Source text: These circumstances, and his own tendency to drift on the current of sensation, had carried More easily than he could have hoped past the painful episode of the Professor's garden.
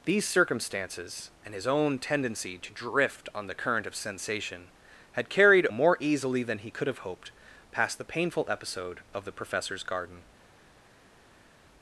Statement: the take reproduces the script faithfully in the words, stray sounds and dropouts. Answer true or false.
true